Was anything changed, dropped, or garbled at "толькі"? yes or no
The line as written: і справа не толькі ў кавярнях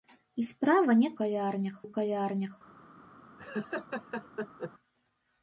yes